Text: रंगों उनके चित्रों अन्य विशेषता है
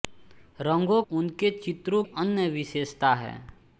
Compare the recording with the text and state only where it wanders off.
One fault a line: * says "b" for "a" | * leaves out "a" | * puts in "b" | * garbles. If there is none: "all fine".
all fine